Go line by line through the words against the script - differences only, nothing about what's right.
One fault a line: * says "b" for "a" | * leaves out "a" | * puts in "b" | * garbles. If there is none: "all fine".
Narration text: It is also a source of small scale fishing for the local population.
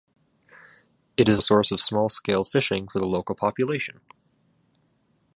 * leaves out "also"